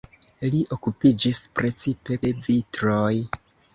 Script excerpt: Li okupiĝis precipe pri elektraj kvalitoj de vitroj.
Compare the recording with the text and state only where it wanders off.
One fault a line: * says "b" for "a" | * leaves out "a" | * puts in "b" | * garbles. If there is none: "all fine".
* leaves out "pri elektraj kvalitoj"